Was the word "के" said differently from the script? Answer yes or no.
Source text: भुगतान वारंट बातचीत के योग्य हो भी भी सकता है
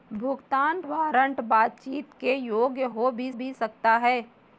no